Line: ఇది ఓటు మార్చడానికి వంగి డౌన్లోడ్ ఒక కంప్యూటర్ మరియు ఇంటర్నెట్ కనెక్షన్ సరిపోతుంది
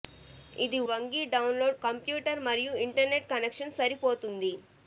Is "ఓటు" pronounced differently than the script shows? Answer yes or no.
yes